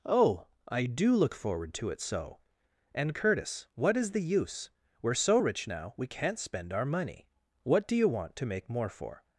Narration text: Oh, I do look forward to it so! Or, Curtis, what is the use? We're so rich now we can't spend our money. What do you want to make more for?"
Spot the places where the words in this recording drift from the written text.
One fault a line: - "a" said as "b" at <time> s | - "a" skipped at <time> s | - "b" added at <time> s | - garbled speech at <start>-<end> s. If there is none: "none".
- "Or" said as "And" at 2.9 s